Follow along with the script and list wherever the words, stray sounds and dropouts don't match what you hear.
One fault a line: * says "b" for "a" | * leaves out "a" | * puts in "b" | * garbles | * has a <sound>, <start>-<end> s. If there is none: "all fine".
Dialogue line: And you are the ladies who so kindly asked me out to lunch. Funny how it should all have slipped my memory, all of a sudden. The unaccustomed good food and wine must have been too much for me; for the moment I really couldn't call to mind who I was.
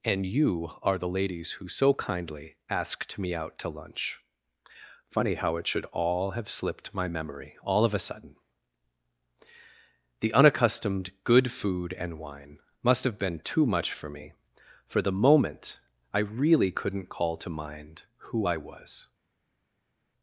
all fine